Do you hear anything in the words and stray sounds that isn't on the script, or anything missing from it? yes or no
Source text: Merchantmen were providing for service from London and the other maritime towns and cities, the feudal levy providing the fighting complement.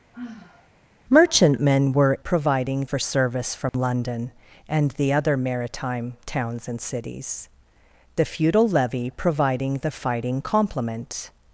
yes